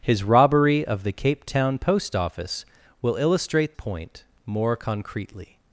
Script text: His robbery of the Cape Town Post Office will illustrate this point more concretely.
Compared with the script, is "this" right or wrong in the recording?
wrong